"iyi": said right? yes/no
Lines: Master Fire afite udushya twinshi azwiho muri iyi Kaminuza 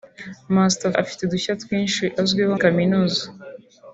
no